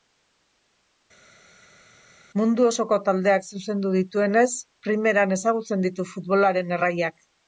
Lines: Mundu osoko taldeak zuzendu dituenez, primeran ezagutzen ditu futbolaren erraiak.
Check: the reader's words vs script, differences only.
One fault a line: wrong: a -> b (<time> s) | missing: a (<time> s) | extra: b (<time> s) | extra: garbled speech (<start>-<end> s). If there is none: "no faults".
no faults